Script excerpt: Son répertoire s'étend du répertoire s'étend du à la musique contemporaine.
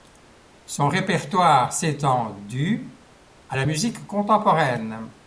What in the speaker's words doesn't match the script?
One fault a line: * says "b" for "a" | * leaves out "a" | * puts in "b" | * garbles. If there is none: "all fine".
* leaves out "répertoire s'étend du"